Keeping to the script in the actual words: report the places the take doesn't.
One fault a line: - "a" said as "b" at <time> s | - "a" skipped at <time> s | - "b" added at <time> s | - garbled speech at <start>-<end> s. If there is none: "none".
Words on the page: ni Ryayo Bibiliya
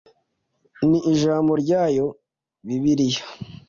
- "Ijambo" added at 1.1 s